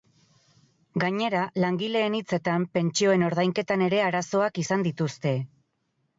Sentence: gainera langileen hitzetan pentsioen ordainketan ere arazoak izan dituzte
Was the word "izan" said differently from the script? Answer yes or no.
no